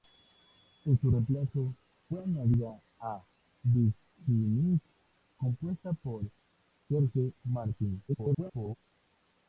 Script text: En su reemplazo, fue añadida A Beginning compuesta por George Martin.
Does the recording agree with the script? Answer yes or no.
no